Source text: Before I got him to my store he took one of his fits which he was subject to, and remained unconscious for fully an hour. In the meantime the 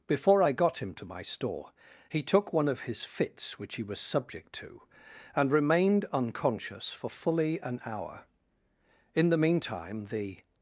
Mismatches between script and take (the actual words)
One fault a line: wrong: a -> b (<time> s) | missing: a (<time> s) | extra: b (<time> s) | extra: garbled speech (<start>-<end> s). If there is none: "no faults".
no faults